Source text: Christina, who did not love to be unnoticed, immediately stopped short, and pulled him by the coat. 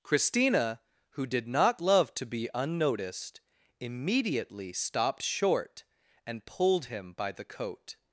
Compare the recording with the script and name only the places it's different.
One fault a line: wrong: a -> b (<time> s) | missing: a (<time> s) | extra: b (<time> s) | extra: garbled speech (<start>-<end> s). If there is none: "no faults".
no faults